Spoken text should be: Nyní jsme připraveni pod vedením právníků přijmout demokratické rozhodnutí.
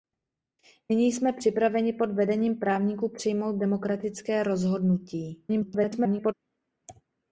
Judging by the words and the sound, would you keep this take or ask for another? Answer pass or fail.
fail